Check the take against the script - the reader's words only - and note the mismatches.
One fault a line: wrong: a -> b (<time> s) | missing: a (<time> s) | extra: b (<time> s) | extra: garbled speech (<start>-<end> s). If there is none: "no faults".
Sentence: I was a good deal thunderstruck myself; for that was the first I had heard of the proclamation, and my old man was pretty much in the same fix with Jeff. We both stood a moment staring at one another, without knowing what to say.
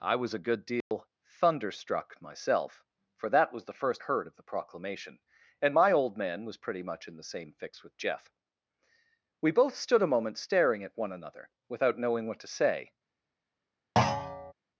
missing: I had (4.0 s)